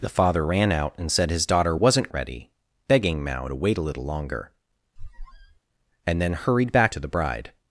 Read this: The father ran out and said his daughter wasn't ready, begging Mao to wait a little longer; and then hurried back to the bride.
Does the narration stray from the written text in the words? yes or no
no